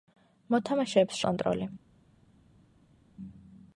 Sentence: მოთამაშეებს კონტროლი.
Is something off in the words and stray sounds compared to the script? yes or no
no